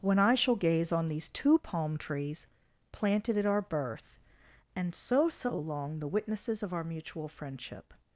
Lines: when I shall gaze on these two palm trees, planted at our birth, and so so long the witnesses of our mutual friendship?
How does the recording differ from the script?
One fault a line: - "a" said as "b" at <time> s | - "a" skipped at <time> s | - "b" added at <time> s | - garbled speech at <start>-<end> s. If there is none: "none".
none